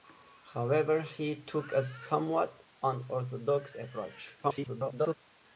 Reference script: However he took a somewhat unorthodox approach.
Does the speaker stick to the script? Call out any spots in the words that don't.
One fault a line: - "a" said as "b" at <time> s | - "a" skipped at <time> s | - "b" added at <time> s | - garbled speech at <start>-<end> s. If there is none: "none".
- garbled speech at 4.4-5.1 s